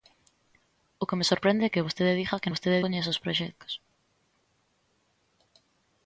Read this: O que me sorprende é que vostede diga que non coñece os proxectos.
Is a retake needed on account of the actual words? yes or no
yes